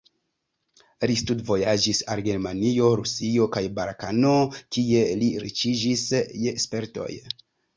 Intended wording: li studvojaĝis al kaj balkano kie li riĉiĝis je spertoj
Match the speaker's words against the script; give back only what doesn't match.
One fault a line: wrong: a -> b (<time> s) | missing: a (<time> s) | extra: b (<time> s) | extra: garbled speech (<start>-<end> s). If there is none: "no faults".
extra: germanio rusio (2.3 s)